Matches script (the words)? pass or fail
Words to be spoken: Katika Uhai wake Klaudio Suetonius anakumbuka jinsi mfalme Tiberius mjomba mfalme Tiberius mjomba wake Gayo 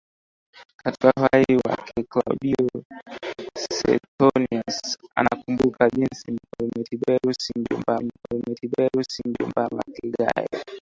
pass